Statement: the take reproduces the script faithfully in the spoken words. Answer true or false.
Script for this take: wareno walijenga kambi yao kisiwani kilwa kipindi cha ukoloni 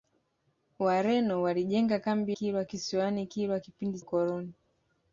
false